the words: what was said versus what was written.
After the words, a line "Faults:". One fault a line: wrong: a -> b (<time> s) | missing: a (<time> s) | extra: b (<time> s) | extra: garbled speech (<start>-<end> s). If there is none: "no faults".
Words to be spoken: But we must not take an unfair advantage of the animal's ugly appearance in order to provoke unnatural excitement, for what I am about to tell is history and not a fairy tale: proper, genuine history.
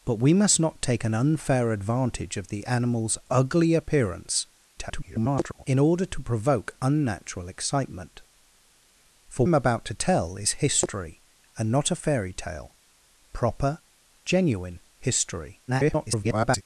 But we must not take an unfair advantage of the animal's ugly appearance [garbled] in order to provoke unnatural excitement, for am about to tell is history and not a fairy tale: proper, genuine history. [garbled]
Faults:
extra: garbled speech (4.8-5.6 s)
missing: what I (9.4 s)
extra: garbled speech (15.7-16.6 s)